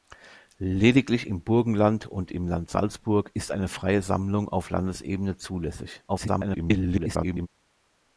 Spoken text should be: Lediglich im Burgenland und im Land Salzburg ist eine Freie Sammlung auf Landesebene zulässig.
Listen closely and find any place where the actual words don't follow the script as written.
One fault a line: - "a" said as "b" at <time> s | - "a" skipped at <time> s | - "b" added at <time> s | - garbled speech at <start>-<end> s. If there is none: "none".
- garbled speech at 6.1-7.5 s